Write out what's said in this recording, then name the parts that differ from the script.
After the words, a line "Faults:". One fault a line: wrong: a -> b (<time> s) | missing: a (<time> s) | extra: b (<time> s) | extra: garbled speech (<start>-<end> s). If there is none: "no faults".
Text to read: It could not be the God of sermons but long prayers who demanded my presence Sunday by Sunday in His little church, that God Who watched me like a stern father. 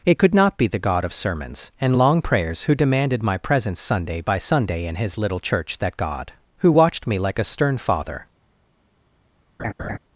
It could not be the God of sermons and long prayers who demanded my presence Sunday by Sunday in His little church, that God Who watched me like a stern father.
Faults:
wrong: but -> and (1.8 s)